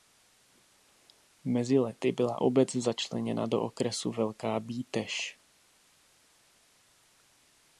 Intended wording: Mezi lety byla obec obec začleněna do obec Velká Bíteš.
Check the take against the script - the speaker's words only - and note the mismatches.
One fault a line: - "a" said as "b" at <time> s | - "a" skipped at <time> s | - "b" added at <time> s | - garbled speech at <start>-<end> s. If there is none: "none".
- "obec" skipped at 2.8 s
- "obec" said as "okresu" at 3.6 s